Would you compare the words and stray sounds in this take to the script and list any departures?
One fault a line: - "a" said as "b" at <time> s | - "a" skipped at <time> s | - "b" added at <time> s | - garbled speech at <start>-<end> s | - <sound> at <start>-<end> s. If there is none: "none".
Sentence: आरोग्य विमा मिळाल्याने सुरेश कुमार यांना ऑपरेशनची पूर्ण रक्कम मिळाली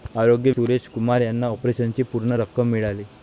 - "विमा मिळाल्याने" skipped at 0.5 s